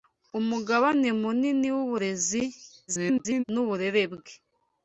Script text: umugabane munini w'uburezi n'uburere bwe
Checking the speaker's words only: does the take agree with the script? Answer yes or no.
no